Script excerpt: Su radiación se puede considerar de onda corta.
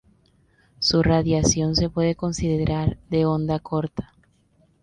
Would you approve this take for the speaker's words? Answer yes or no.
yes